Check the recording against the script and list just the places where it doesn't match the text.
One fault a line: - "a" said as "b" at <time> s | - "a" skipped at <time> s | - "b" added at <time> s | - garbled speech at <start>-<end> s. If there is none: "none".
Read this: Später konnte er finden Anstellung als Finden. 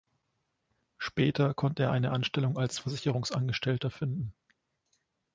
- "finden" said as "eine" at 1.9 s
- "Versicherungsangestellter" added at 2.7 s